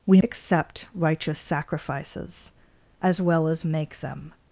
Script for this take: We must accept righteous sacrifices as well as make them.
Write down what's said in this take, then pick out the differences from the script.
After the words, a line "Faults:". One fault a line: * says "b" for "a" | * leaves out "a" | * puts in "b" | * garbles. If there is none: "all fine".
We accept righteous sacrifices as well as make them.
Faults:
* leaves out "must"